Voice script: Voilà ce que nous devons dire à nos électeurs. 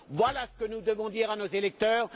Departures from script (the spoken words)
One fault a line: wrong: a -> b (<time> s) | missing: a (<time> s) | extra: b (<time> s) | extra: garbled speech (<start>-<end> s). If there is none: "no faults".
no faults